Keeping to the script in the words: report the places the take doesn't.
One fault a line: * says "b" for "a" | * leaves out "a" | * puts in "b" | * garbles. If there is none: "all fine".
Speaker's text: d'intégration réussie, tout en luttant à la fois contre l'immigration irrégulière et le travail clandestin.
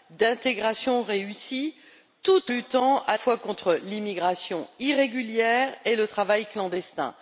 * leaves out "en"
* leaves out "la"